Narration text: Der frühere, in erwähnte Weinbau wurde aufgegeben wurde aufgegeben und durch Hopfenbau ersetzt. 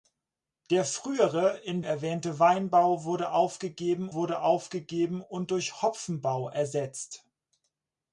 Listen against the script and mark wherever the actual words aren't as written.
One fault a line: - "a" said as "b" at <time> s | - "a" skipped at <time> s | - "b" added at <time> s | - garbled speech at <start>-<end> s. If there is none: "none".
none